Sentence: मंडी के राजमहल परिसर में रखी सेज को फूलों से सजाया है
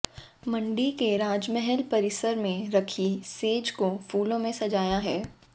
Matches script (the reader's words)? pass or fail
pass